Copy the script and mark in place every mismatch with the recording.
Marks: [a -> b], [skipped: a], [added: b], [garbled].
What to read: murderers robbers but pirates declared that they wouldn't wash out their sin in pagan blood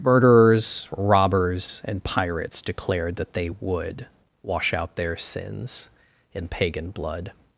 murderers robbers [but -> and] pirates declared that they [wouldn't -> would] wash out their [sin -> sins] in pagan blood